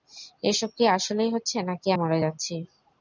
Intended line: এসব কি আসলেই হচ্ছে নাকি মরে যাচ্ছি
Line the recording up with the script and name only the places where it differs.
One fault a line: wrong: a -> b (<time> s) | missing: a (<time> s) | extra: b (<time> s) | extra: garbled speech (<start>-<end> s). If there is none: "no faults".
no faults